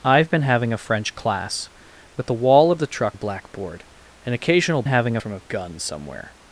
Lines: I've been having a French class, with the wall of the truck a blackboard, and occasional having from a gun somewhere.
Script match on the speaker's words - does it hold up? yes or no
yes